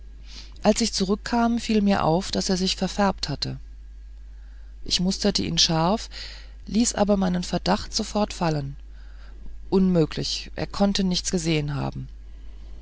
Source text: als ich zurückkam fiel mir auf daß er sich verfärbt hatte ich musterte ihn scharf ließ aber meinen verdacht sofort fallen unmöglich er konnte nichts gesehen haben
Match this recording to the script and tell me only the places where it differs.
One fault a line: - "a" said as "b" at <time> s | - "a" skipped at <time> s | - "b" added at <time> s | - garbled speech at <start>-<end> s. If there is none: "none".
none